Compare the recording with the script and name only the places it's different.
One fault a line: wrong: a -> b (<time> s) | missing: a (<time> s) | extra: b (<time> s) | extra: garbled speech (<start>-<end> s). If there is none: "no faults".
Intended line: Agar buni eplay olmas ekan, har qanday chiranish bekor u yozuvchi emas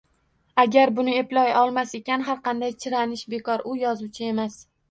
no faults